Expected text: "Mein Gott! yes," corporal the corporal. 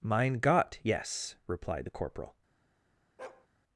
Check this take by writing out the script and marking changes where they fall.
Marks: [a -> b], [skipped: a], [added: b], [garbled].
"Mein Gott! yes," [corporal -> replied] the corporal.